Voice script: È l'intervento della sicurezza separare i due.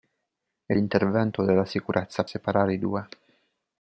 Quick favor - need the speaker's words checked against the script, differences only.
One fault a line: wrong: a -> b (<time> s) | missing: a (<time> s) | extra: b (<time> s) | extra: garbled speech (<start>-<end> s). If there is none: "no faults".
no faults